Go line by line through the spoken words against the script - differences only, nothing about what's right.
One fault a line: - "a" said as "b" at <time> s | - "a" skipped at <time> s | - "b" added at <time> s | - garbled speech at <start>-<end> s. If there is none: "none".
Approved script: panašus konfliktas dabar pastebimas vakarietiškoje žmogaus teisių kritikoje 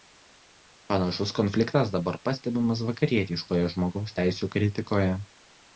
none